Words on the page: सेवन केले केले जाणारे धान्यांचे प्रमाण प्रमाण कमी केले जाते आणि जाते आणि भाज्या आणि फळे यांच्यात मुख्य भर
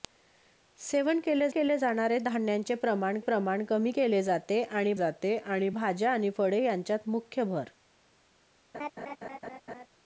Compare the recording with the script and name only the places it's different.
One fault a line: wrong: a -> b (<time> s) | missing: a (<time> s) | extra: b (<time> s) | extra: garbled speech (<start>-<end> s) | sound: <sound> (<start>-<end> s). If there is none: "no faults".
sound: laugh (8.7-9.9 s)